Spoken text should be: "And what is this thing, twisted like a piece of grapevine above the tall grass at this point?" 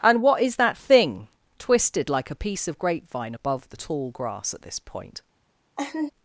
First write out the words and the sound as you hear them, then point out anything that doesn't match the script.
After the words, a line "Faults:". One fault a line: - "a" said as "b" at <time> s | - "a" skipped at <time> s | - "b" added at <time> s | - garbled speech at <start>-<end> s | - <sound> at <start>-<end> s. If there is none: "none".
"And what is that thing, twisted like a piece of grapevine above the tall grass at this point?"
Faults:
- "this" said as "that" at 0.6 s
- laugh at 5.8-6.1 s